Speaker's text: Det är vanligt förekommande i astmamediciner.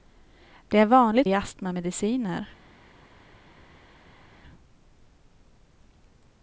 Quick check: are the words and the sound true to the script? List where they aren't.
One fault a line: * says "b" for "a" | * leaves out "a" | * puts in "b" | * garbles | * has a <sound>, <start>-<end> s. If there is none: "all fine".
* leaves out "förekommande"